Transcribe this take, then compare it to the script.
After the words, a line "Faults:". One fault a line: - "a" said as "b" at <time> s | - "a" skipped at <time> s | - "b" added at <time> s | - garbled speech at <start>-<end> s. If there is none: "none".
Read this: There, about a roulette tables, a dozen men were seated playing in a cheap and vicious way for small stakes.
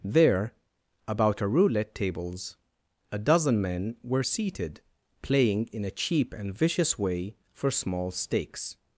There, about a roulette tables, a dozen men were seated playing in a cheap and vicious way for small stakes.
Faults:
none